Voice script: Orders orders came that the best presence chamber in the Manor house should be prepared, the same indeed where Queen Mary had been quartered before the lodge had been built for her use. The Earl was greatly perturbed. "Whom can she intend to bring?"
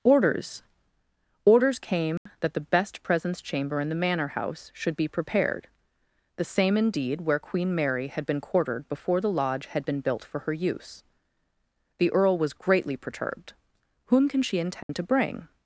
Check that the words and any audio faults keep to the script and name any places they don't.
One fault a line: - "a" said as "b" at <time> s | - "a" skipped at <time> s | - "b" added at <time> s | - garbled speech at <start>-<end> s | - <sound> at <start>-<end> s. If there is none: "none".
- dropout at 2.2-2.3 s
- dropout at 14.8-14.9 s